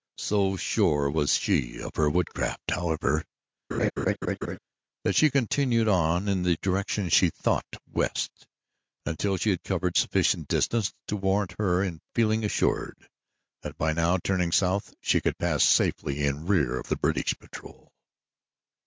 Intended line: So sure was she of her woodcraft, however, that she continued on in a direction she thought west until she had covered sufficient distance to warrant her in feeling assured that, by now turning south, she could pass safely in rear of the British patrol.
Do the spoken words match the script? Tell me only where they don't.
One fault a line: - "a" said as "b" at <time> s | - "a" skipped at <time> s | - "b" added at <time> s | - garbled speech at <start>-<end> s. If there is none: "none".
- "a" said as "the" at 6.4 s